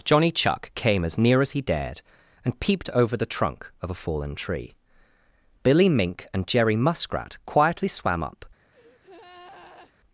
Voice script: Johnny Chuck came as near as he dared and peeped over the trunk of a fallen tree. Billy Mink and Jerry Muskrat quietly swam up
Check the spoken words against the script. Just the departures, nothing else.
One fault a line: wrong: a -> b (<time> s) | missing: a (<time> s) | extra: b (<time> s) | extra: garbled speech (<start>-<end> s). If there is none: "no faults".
no faults